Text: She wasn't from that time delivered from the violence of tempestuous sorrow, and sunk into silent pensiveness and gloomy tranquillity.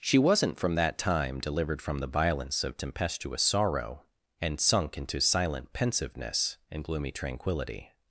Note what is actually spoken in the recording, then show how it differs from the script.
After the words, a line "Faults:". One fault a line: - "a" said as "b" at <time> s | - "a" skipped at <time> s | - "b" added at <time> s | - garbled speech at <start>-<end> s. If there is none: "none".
She wasn't from that time delivered from the violence of tempestuous sorrow, and sunk into silent pensiveness and gloomy tranquillity.
Faults:
none